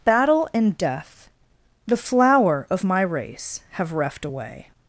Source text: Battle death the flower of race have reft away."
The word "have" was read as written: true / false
true